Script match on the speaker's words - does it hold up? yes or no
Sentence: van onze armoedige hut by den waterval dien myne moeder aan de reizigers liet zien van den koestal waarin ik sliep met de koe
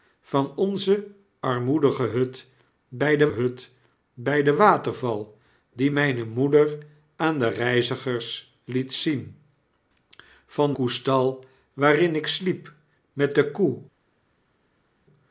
no